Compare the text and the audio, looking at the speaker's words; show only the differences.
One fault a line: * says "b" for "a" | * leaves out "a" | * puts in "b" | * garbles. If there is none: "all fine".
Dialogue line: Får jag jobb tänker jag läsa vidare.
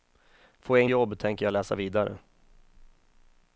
all fine